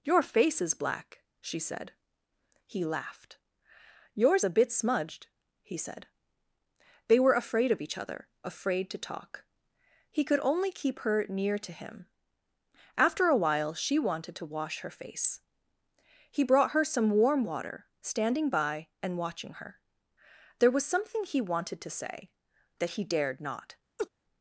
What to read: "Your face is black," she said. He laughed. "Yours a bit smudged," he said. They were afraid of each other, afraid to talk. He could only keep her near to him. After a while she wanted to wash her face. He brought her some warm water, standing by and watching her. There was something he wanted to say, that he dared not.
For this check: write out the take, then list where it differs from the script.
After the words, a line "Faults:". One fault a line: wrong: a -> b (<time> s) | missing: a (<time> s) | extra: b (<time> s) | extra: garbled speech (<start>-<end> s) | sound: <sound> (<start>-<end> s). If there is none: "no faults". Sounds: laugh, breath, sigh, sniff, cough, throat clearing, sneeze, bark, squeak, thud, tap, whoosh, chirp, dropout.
"Your face is black," she said. He laughed. "Yours a bit smudged," he said. They were afraid of each other, afraid to talk. He could only keep her near to him. After a while she wanted to wash her face. He brought her some warm water, standing by and watching her. There was something he wanted to say, that he dared not.
Faults:
sound: laugh (24.0-24.1 s)